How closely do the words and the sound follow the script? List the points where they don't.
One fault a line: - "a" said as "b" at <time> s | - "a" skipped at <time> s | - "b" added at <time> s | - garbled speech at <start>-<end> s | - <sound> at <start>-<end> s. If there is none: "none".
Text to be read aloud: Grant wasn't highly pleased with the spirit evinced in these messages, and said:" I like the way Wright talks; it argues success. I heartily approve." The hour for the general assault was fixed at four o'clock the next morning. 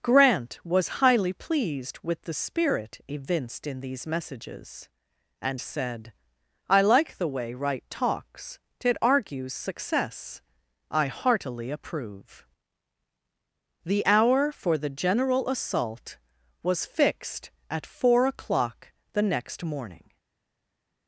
- "wasn't" said as "was" at 0.6 s